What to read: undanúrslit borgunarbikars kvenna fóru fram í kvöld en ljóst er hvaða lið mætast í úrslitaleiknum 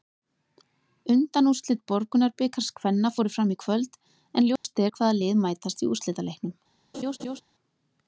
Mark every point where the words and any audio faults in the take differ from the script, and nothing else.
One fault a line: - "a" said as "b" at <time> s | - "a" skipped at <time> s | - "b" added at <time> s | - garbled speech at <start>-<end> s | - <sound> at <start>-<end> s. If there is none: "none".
- dropout at 4.6-4.6 s
- laugh at 6.9-7.4 s